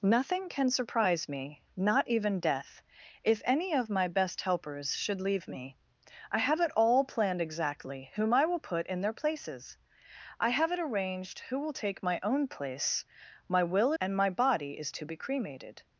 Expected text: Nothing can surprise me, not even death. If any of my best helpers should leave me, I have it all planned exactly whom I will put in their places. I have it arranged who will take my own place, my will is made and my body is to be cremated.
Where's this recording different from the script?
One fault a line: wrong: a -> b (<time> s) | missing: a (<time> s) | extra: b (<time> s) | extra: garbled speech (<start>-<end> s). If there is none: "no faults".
missing: is made (13.9 s)